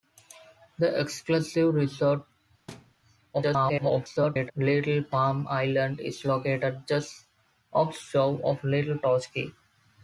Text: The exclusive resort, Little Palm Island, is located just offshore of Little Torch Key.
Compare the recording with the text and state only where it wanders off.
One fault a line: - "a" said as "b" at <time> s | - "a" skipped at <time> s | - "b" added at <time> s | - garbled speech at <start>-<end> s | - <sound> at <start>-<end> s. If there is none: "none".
- thud at 2.7-2.9 s
- garbled speech at 3.3-4.5 s